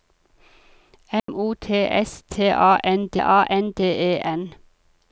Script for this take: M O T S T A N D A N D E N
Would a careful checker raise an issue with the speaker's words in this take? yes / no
no